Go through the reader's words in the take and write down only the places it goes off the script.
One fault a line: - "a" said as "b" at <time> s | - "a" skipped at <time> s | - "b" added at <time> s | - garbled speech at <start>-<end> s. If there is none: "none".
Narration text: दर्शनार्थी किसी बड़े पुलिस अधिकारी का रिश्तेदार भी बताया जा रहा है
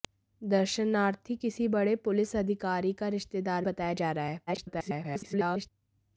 - "भी" skipped at 3.6 s
- garbled speech at 4.5-5.7 s